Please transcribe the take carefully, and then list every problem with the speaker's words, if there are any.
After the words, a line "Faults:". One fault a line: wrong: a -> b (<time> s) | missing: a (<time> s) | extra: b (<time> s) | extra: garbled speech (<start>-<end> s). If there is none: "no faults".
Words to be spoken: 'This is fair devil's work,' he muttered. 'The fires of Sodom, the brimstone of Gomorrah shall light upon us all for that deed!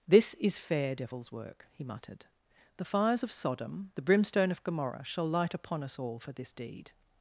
'This is fair devil's work,' he muttered. 'The fires of Sodom, the brimstone of Gomorrah shall light upon us all for this deed!
Faults:
wrong: that -> this (6.3 s)